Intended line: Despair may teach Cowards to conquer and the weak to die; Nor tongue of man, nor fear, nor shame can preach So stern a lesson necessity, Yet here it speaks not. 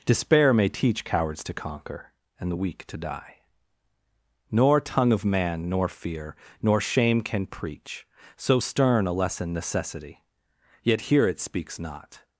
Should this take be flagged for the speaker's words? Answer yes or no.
no